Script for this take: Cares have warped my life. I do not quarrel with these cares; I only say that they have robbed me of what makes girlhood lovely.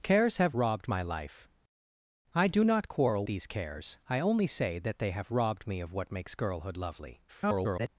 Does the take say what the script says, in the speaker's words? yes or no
no